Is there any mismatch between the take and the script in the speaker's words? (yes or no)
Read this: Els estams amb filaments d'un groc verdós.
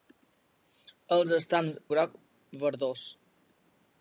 yes